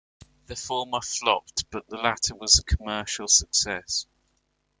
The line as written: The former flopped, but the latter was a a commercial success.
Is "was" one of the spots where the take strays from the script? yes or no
no